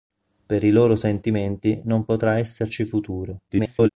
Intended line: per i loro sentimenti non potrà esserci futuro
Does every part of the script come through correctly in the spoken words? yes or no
no